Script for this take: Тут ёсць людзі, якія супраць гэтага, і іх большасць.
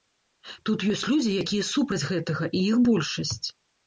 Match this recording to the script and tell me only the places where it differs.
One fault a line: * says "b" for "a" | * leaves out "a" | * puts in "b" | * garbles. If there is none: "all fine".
all fine